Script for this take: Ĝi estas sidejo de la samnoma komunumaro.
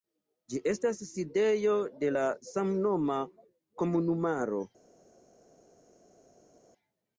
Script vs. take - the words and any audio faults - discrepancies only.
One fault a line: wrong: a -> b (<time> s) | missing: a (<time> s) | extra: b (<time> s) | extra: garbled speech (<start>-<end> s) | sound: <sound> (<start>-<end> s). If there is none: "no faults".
no faults